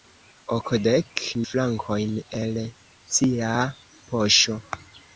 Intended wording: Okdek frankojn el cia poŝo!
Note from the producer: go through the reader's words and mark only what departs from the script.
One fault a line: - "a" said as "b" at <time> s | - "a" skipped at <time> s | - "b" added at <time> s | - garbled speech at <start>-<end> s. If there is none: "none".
none